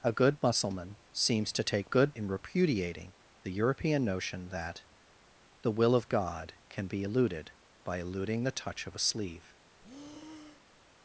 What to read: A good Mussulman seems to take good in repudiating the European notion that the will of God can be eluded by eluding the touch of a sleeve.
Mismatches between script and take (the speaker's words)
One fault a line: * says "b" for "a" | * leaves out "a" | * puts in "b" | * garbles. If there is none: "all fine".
all fine